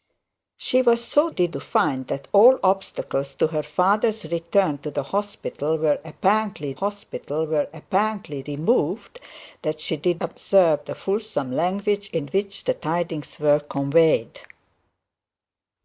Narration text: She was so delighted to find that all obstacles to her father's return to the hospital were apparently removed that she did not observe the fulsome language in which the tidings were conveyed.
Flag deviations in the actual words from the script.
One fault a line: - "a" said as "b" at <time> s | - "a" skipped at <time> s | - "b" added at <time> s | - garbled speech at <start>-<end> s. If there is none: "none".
- "delighted" said as "did" at 1.3 s
- "hospital were apparently" added at 6.7 s
- "not" skipped at 10.2 s